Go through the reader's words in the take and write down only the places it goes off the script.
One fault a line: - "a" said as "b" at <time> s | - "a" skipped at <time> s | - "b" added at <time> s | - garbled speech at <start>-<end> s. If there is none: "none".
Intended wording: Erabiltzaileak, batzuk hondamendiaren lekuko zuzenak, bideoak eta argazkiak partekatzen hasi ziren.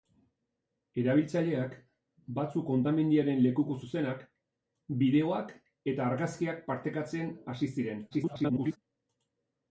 - garbled speech at 8.1-8.8 s